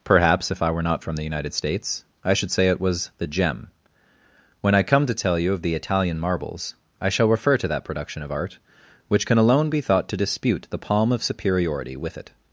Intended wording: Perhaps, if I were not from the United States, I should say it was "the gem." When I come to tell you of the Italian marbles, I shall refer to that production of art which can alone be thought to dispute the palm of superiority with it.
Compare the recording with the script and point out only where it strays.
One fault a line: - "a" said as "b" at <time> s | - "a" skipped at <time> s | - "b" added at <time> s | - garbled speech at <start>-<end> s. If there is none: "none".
none